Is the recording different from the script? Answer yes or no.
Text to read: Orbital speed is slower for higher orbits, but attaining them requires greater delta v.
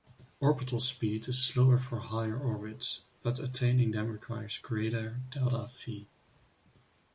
no